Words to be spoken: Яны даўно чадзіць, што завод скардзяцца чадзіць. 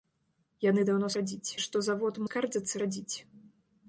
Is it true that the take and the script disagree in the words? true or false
false